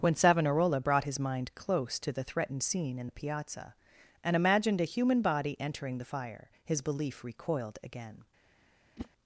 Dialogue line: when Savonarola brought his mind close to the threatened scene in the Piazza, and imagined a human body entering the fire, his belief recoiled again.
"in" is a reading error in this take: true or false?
false